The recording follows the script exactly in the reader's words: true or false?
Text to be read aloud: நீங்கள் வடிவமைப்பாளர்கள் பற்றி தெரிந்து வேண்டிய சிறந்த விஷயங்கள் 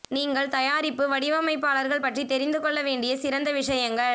false